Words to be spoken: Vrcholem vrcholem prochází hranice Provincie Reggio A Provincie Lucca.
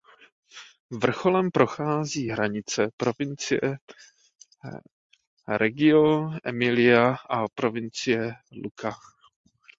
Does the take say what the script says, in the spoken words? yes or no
no